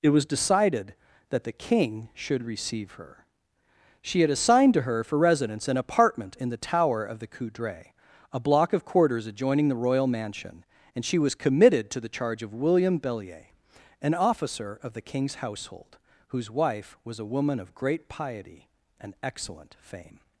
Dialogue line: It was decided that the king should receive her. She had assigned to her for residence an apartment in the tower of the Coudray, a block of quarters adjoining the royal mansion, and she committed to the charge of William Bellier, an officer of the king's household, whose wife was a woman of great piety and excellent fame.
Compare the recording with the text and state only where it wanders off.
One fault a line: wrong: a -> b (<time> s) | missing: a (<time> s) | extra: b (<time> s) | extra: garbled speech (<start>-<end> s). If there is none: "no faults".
extra: was (11.2 s)